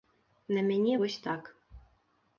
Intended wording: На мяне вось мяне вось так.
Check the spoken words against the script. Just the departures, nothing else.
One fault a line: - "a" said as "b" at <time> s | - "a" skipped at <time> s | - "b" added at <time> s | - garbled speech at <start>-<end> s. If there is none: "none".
- "мяне вось" skipped at 1.2 s